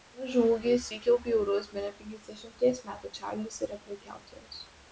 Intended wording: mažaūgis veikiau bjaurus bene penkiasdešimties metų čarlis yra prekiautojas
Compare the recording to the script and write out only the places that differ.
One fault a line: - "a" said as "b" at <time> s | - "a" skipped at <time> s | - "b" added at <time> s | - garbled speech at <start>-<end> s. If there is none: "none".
none